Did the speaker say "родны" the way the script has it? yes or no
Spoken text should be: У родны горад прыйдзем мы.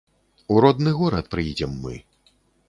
yes